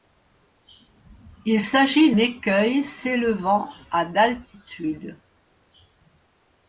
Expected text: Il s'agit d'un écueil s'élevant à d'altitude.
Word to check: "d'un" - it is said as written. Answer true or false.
false